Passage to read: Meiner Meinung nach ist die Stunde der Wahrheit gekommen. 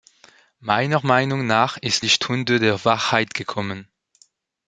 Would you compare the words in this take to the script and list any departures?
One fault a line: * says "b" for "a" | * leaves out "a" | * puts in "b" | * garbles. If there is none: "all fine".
all fine